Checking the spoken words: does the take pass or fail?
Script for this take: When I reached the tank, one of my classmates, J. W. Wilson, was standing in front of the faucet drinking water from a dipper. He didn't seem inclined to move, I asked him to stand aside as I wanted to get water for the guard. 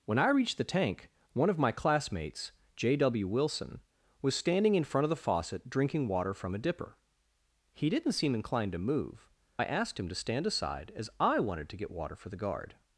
pass